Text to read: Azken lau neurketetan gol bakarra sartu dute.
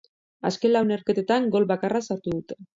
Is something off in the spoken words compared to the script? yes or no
no